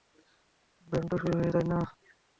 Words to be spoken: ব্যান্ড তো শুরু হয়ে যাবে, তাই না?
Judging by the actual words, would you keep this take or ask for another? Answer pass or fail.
fail